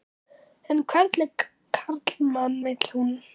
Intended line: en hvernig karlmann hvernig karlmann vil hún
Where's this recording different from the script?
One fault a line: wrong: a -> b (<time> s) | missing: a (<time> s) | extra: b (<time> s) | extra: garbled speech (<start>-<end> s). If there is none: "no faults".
missing: hvernig karlmann (2.6 s)